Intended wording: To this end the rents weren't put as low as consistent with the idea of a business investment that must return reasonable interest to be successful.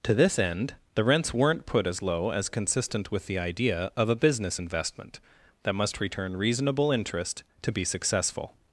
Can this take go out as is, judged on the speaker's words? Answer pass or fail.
pass